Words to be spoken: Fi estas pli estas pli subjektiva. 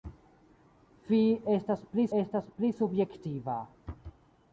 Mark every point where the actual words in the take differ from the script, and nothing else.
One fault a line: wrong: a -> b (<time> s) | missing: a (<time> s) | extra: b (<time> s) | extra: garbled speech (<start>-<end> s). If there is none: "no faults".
no faults